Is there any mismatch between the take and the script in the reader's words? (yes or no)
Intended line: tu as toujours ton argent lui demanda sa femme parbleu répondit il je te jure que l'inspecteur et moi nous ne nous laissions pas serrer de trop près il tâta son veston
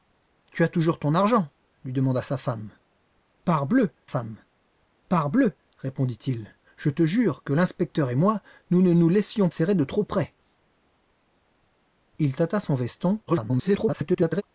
yes